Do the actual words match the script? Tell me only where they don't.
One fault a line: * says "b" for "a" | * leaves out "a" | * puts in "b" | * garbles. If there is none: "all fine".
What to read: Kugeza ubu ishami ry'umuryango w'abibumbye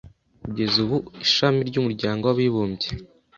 all fine